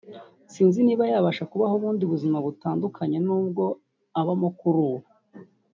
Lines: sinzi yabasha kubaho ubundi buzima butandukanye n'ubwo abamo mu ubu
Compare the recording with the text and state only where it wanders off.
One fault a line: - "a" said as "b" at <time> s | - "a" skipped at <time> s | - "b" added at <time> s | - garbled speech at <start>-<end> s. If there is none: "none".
- "niba" added at 0.8 s
- "mu" said as "kuri" at 4.6 s